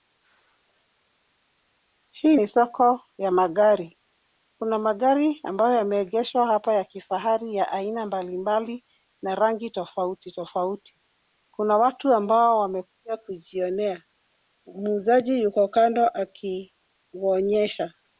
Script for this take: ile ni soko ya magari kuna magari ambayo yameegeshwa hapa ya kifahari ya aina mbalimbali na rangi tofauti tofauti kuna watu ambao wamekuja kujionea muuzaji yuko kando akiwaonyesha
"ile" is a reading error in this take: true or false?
true